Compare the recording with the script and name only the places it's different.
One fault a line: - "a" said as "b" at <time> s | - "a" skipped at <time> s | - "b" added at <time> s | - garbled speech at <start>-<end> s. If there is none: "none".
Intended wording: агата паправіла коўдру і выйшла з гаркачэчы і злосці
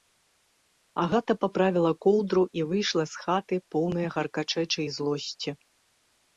- "хаты поўная" added at 3.3 s